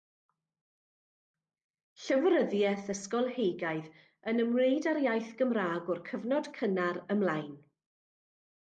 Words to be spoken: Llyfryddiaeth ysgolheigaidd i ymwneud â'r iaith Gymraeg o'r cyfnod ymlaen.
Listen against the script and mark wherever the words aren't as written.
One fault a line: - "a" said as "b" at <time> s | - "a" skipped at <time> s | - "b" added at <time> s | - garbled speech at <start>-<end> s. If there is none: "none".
- "i" said as "yn" at 4.3 s
- "cynnar" added at 6.6 s